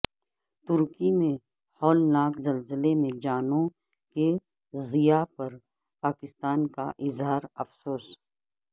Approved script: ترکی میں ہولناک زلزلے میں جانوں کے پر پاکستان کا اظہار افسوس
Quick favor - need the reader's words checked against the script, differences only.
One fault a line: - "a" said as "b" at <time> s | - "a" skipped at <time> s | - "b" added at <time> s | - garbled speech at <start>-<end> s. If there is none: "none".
- "ضیاع" added at 4.7 s